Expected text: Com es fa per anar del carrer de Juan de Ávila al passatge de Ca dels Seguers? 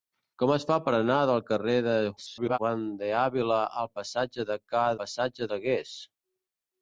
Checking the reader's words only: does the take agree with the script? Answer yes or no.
no